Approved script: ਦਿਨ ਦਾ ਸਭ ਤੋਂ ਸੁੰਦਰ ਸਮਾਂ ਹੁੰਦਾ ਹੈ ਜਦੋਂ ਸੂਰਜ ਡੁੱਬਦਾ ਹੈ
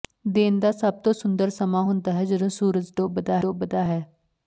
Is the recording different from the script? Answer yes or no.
yes